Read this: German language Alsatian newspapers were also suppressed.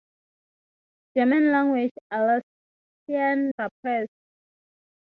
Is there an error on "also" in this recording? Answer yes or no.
yes